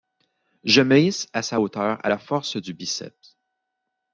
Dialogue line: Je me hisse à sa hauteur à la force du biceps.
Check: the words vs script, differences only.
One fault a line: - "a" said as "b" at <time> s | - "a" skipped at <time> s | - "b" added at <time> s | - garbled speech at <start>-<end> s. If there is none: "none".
none